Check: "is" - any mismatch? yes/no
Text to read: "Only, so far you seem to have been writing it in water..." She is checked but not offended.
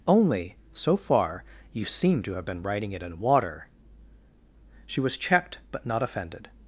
yes